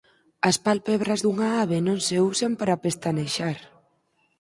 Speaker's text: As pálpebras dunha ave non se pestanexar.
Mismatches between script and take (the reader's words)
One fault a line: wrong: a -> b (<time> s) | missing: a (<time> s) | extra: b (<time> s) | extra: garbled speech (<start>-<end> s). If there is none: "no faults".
extra: usan para (2.3 s)